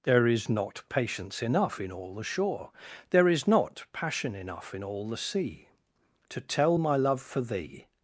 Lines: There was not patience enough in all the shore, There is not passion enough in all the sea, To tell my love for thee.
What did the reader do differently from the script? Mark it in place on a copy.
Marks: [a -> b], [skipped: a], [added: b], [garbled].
There [was -> is] not patience enough in all the shore, There is not passion enough in all the sea, To tell my love for thee.